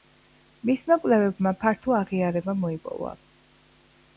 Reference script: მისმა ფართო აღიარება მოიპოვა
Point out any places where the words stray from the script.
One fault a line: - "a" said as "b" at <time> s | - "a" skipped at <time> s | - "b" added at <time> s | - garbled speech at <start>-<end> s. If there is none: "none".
- "კვლევებმა" added at 1.0 s